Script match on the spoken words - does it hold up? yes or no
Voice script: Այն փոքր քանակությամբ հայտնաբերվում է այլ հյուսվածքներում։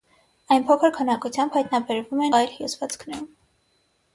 yes